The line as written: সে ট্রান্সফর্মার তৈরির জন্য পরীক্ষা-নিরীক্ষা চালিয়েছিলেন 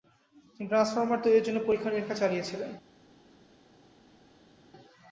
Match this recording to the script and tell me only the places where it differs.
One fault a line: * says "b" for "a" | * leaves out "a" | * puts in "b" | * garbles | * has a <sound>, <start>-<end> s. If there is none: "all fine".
* says "তিনি" for "সে"